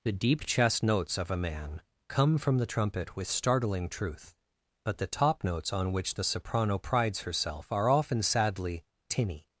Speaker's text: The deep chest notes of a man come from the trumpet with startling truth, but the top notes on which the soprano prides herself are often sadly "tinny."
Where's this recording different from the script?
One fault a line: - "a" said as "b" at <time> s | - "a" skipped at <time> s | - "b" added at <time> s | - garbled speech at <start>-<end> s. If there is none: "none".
none